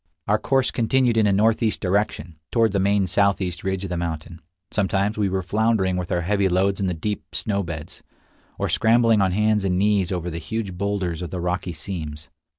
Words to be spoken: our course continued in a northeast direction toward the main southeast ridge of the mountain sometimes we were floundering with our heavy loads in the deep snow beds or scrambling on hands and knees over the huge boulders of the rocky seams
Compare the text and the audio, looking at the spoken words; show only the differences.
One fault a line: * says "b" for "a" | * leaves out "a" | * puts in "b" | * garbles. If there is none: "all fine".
all fine